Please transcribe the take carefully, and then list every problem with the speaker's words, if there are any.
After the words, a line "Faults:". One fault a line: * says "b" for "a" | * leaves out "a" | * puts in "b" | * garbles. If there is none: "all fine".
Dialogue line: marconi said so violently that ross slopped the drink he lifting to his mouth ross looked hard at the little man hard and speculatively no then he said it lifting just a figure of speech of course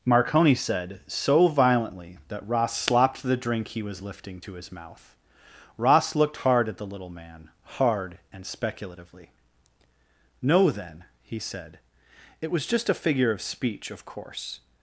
marconi said so violently that ross slopped the drink he was lifting to his mouth ross looked hard at the little man hard and speculatively no then he said it was just a figure of speech of course
Faults:
* puts in "was"
* says "was" for "lifting"